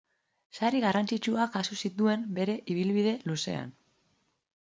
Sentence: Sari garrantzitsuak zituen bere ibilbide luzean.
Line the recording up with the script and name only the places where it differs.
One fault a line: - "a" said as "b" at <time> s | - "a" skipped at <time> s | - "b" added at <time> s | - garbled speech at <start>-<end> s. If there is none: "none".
- "jaso" added at 1.6 s